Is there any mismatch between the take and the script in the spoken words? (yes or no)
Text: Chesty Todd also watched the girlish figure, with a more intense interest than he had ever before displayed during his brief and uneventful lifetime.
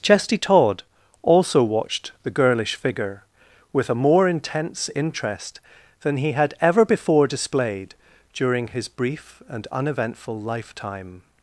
no